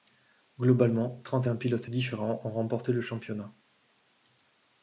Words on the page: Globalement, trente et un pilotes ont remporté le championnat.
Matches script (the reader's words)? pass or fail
fail